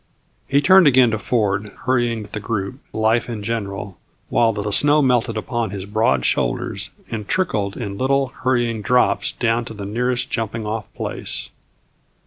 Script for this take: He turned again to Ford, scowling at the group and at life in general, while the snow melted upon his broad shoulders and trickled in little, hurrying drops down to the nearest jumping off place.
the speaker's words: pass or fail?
fail